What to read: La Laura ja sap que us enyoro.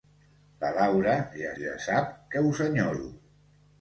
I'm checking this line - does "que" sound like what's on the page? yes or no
yes